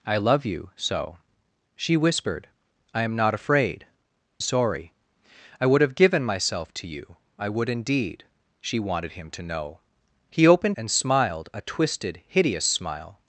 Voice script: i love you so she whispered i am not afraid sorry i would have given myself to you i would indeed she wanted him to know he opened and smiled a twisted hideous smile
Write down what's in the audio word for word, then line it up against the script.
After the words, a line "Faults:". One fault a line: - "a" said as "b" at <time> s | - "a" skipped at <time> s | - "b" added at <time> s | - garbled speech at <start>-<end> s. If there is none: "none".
i love you so she whispered i am not afraid sorry i would have given myself to you i would indeed she wanted him to know he opened and smiled a twisted hideous smile
Faults:
none